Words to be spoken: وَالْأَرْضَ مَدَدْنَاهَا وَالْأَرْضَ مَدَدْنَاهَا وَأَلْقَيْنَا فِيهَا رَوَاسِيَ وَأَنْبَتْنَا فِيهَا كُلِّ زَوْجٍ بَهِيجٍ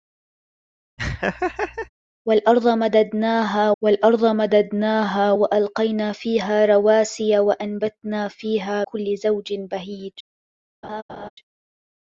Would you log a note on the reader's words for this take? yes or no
no